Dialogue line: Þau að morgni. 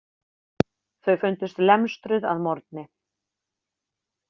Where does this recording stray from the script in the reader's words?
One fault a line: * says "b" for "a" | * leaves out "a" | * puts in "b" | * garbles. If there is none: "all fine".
* puts in "fundust lemstruð"